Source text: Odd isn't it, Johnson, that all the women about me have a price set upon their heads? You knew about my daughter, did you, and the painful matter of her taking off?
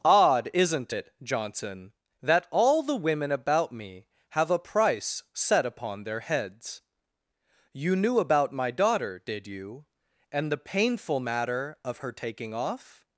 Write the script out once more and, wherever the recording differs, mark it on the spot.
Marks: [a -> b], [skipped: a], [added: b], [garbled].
Odd isn't it, Johnson, that all the women about me have a price set upon their heads? You knew about my daughter, did you, and the painful matter of her taking off?